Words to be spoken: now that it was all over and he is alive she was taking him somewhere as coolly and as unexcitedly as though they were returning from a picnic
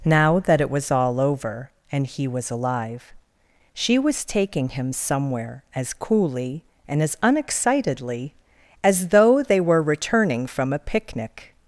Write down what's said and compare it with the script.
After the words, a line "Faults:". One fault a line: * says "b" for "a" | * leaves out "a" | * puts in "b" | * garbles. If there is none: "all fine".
now that it was all over and he was alive she was taking him somewhere as coolly and as unexcitedly as though they were returning from a picnic
Faults:
* says "was" for "is"